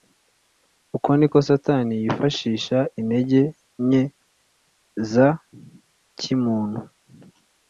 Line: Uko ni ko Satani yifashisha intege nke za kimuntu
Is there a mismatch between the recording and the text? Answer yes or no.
no